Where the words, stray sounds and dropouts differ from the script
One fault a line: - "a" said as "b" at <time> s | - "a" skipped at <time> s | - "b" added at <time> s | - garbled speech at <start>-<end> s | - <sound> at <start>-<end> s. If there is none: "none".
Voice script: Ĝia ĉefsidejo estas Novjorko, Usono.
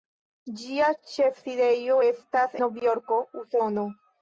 none